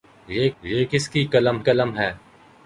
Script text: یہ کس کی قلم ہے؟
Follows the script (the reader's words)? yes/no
no